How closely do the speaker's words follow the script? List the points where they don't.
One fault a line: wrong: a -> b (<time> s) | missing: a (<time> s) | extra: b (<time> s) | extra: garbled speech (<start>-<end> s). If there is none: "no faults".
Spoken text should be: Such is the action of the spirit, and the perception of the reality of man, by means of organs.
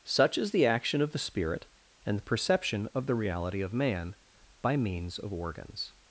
no faults